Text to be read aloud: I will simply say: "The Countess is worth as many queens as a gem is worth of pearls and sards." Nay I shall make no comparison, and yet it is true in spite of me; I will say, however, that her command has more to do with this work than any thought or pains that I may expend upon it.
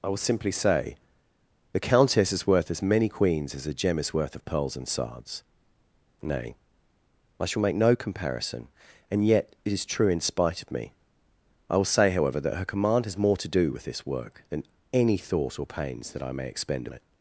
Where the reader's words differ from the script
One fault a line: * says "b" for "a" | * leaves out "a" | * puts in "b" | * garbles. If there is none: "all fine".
* leaves out "upon"